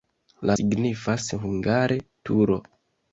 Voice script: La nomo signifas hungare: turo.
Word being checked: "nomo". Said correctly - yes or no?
no